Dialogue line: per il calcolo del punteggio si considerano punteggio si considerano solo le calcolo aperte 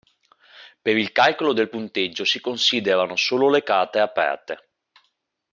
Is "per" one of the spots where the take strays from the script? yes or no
no